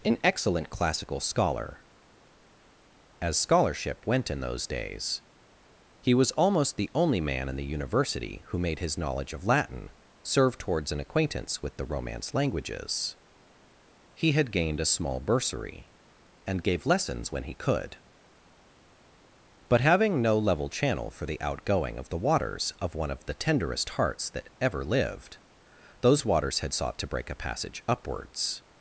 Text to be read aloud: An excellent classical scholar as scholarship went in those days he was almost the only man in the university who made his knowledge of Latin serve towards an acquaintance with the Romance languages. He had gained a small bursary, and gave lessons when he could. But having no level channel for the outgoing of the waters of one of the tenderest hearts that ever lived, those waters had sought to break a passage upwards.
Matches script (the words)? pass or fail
pass